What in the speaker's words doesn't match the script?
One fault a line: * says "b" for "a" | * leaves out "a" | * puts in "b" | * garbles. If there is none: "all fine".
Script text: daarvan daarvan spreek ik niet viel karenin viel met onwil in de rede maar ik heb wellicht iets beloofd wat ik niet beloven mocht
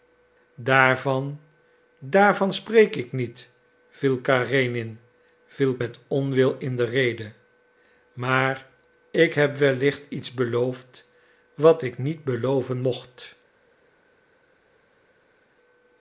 all fine